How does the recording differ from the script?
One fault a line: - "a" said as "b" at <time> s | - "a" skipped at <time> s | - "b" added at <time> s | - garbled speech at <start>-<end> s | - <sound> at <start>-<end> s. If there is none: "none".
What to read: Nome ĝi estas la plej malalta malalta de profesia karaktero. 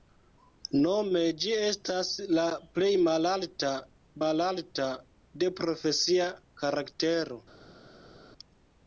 none